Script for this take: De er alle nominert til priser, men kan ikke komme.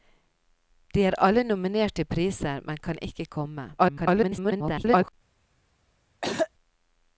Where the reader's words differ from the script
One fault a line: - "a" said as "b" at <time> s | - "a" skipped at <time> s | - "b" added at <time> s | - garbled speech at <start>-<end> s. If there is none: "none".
- garbled speech at 3.8-5.1 s